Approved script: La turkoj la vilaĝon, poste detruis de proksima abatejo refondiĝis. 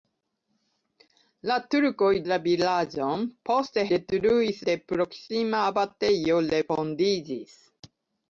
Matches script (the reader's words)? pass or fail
pass